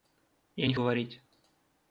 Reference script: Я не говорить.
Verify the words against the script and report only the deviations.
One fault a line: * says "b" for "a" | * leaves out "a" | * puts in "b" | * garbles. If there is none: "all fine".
all fine